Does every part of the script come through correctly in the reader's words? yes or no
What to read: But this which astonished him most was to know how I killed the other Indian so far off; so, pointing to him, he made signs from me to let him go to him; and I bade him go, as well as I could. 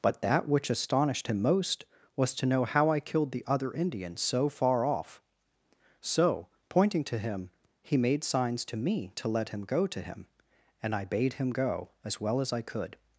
no